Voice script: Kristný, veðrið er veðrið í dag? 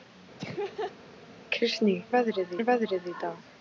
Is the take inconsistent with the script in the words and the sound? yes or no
yes